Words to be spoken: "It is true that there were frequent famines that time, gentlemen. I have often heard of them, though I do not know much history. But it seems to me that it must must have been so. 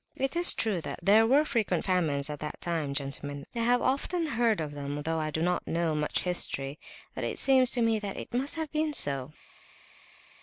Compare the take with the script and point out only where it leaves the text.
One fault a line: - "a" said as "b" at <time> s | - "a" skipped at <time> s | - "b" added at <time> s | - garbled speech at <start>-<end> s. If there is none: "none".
- "at" added at 2.3 s
- "must" skipped at 8.6 s